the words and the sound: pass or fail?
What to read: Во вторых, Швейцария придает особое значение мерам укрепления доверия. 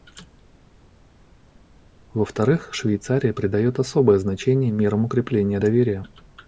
pass